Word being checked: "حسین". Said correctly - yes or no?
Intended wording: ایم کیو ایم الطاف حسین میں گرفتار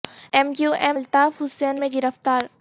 yes